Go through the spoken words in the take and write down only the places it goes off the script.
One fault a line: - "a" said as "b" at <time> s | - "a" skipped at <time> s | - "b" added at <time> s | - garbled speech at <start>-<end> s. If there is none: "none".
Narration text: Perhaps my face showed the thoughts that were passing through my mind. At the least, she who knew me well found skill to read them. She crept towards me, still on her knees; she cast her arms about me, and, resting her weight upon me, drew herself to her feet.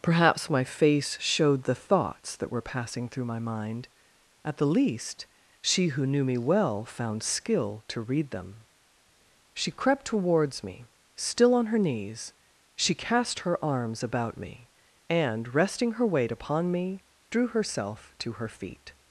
none